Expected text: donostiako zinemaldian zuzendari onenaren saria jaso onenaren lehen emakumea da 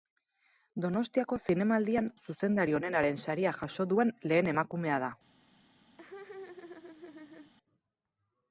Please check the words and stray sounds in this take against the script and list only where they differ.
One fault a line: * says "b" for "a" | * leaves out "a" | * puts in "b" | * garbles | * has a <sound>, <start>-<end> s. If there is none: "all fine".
* says "duen" for "onenaren"
* has a laugh, 6.0-7.5 s